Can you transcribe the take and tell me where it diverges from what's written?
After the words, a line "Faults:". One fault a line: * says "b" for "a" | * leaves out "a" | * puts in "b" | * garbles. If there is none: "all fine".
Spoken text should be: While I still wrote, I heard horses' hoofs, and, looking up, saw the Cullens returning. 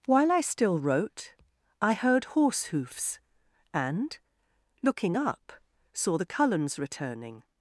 While I still wrote, I heard horse' hoofs, and, looking up, saw the Cullens returning.
Faults:
* says "horse" for "horses"